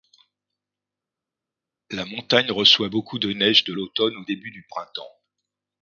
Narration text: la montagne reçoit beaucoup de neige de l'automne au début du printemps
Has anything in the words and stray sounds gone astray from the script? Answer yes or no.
no